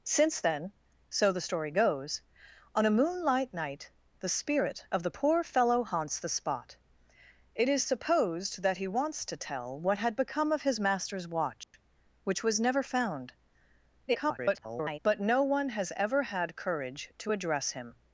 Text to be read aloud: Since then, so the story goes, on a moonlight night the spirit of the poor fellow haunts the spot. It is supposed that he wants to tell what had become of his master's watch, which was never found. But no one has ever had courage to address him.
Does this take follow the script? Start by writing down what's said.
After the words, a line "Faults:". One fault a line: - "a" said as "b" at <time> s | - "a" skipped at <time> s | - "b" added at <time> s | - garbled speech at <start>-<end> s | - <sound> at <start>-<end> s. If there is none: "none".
Since then, so the story goes, on a moonlight night the spirit of the poor fellow haunts the spot. It is supposed that he wants to tell what had become of his master's watch, which was never found. [garbled] But no one has ever had courage to address him.
Faults:
- dropout at 11.6-11.7 s
- garbled speech at 14.1-15.0 s